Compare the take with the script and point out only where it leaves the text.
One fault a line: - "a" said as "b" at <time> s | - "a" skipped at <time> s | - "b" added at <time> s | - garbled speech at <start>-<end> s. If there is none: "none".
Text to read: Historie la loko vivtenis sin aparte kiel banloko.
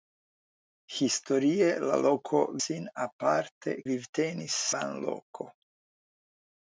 - "vivtenis" skipped at 2.4 s
- "kiel" said as "vivtenis" at 3.9 s